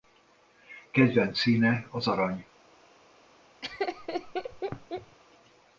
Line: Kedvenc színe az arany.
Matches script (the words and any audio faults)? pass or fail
fail